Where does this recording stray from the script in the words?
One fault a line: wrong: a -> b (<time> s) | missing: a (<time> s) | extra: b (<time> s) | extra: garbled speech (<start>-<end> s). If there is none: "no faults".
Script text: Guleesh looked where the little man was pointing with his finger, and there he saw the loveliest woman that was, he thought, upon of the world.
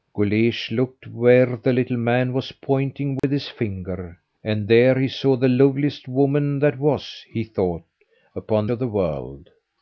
no faults